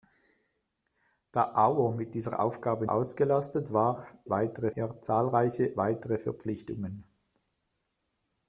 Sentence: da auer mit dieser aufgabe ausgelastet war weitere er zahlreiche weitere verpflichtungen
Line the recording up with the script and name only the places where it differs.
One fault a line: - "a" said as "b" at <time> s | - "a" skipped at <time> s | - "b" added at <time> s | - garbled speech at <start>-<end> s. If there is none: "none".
none